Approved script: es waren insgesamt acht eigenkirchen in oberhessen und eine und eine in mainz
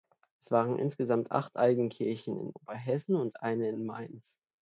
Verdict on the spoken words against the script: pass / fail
fail